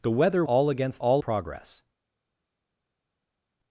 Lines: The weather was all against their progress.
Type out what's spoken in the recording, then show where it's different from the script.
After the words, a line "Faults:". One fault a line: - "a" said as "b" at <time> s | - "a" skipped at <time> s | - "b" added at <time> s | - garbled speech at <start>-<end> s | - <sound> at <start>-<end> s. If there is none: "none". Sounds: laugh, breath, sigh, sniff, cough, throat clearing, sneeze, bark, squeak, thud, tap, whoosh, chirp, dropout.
The weather all against all progress.
Faults:
- "was" skipped at 0.4 s
- "their" said as "all" at 1.0 s